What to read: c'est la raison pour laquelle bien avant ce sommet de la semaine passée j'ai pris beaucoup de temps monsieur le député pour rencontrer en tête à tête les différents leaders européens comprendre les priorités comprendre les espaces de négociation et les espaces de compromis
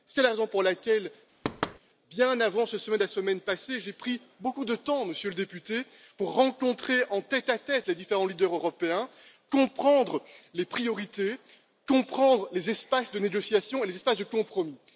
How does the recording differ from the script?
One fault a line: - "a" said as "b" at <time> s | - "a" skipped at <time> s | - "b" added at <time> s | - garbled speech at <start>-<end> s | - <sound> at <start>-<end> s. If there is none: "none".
- thud at 1.4-1.8 s